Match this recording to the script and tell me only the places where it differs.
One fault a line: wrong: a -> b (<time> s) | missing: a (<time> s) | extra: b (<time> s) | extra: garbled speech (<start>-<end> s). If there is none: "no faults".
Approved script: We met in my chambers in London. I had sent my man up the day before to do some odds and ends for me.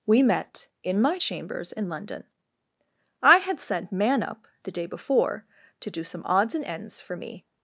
missing: my (3.9 s)